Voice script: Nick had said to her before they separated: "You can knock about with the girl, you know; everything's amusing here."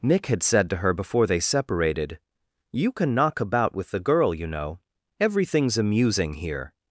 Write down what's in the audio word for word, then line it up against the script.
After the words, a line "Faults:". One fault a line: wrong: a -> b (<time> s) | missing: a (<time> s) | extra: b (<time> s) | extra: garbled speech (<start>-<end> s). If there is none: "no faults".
Nick had said to her before they separated: "You can knock about with the girl, you know; everything's amusing here."
Faults:
no faults